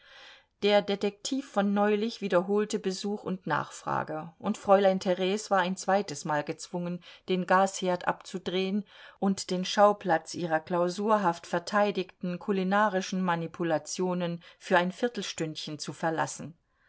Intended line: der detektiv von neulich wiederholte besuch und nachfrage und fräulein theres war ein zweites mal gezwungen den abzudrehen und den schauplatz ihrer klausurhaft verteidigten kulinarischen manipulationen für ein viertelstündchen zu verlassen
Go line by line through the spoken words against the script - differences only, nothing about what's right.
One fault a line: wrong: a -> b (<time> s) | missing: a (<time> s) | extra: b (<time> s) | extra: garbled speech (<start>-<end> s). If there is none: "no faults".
extra: gasherd (7.5 s)